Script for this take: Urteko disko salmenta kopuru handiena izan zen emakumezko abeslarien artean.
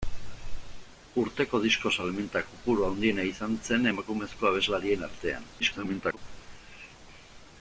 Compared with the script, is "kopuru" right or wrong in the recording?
right